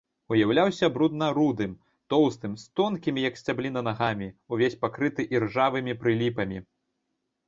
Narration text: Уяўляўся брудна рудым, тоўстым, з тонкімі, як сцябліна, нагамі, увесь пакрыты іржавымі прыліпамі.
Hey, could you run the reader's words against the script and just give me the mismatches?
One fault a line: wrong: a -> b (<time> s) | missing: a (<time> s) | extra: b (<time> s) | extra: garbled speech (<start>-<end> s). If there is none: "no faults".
no faults